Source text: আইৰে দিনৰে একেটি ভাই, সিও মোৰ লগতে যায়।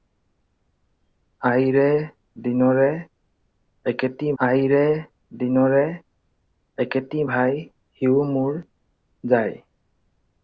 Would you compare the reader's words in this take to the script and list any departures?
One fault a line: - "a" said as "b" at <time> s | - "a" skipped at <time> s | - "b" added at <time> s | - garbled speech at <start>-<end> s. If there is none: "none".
- "আইৰে দিনৰে একেটি" added at 4.4 s
- "লগতে" skipped at 8.6 s